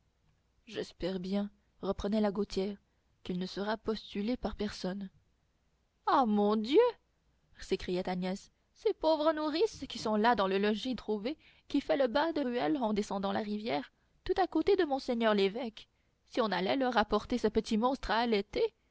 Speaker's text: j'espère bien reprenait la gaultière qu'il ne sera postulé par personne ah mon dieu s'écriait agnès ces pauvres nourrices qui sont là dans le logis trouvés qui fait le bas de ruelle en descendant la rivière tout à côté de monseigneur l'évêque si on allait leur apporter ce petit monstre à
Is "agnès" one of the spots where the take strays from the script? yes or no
no